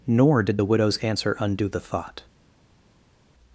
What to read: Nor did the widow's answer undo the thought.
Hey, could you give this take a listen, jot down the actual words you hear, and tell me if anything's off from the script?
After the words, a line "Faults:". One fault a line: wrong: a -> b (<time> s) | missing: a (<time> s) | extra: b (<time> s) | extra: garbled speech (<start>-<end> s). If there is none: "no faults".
Nor did the widow's answer undo the thought.
Faults:
no faults